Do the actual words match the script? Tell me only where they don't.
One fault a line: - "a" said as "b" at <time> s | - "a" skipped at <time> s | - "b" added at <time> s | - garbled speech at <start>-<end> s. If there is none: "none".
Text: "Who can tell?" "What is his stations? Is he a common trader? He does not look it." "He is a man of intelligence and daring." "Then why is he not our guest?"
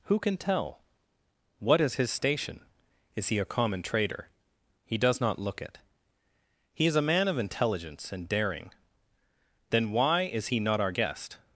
- "stations" said as "station" at 2.1 s